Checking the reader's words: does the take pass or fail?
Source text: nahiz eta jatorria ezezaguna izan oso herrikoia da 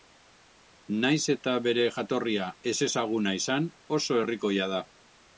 fail